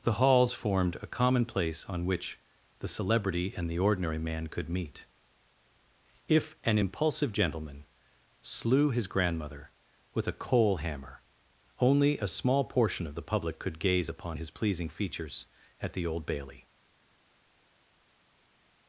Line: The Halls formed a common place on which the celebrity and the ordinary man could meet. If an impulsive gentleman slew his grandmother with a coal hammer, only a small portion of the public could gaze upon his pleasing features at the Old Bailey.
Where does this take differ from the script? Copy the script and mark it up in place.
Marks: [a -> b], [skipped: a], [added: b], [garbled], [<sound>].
The Halls formed a common place on which the celebrity and the ordinary man could meet. If an impulsive gentleman slew his grandmother with a coal hammer, only a small portion of the public could gaze upon his pleasing features at the Old Bailey.